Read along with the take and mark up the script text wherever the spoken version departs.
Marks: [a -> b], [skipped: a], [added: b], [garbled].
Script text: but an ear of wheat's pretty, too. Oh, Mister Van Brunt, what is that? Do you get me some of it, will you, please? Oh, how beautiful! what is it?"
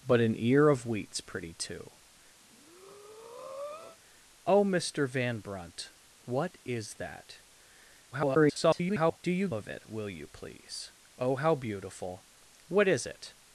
but an ear of wheat's pretty, too. Oh, Mister Van Brunt, what is that? [garbled] Do you [skipped: get me some] of it, will you, please? Oh, how beautiful! what is it?"